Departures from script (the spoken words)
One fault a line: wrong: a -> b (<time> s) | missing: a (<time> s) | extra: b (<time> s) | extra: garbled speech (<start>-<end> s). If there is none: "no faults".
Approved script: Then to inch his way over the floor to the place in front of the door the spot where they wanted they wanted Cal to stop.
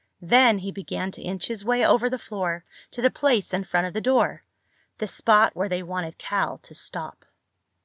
extra: he began (0.6 s)
missing: they wanted (6.2 s)